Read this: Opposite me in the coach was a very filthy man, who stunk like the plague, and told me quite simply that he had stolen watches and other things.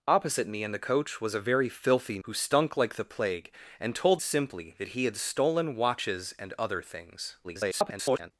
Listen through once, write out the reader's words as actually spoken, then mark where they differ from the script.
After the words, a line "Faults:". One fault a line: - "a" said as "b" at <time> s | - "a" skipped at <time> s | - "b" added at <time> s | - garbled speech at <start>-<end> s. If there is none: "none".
Opposite me in the coach was a very filthy who stunk like the plague, and told simply that he had stolen watches and other things. [garbled]
Faults:
- "man" skipped at 2.2 s
- "me quite" skipped at 4.2 s
- garbled speech at 7.4-8.3 s